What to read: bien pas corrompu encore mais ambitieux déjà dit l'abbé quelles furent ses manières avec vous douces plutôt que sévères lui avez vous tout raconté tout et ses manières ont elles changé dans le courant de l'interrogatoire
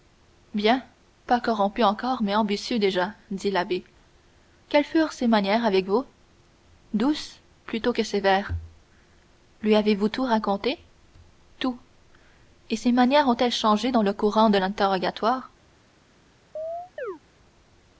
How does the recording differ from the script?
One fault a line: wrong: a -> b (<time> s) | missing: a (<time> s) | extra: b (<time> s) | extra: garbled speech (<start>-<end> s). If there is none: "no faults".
no faults